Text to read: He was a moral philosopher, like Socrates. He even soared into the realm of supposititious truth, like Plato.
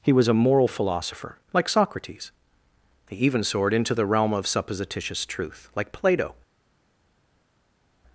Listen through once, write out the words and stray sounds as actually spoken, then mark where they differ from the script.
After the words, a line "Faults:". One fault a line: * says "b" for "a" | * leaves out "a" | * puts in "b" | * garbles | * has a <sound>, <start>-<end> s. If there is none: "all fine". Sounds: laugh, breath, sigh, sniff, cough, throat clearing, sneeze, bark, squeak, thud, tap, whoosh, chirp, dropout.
He was a moral philosopher, like Socrates. He even soared into the realm of supposititious truth, like Plato.
Faults:
all fine